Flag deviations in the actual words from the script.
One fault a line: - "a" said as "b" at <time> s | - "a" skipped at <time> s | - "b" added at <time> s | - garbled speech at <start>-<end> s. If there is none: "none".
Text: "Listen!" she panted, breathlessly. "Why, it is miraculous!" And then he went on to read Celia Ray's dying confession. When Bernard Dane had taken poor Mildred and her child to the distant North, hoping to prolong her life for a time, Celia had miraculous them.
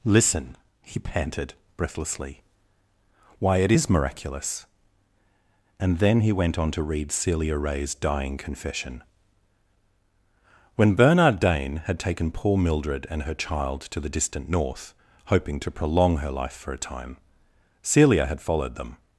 - "she" said as "he" at 0.8 s
- "miraculous" said as "followed" at 18.4 s